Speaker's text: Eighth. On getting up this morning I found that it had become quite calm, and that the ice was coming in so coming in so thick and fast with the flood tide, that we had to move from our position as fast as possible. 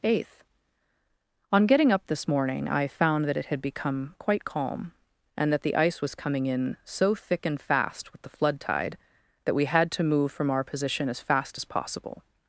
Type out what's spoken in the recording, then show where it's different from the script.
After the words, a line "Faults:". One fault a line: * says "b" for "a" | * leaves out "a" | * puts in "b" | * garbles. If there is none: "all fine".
Eighth. On getting up this morning I found that it had become quite calm, and that the ice was coming in so thick and fast with the flood tide, that we had to move from our position as fast as possible.
Faults:
* leaves out "coming in so"